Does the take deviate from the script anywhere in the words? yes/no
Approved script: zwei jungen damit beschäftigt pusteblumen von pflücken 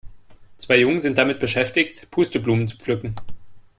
yes